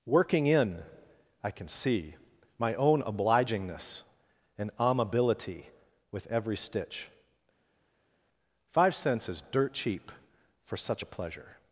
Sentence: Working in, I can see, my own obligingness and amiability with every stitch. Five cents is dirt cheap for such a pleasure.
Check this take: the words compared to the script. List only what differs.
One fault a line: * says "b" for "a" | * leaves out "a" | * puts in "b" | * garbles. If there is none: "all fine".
all fine